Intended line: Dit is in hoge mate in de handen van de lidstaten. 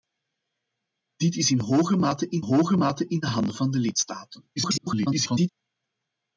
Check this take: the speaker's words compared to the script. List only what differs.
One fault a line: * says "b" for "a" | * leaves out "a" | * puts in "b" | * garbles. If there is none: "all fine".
* puts in "hoge mate in"
* garbles